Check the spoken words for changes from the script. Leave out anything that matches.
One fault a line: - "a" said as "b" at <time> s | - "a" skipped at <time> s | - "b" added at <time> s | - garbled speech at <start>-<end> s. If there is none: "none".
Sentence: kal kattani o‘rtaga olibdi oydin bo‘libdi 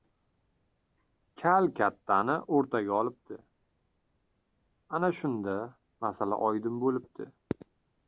- "ana shunda masala" added at 5.0 s